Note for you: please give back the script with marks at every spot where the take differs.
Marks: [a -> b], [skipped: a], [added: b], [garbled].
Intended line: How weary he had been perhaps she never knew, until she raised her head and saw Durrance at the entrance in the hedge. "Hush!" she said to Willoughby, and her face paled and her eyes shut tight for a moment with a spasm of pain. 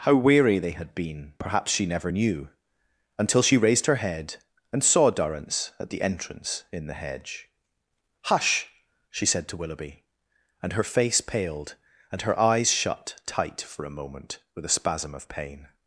How weary [he -> they] had been perhaps she never knew, until she raised her head and saw Durrance at the entrance in the hedge. "Hush!" she said to Willoughby, and her face paled and her eyes shut tight for a moment with a spasm of pain.